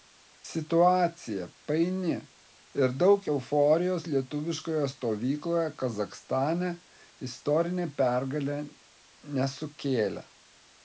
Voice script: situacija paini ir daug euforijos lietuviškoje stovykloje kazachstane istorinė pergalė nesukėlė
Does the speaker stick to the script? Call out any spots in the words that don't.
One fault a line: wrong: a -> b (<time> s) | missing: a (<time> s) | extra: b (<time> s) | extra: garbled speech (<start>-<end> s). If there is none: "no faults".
no faults